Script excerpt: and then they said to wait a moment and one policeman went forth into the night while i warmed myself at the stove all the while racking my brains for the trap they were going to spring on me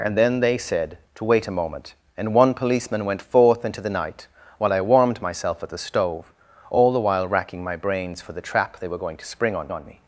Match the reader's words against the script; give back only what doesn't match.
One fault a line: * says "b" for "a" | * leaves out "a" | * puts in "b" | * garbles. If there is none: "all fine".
* puts in "on"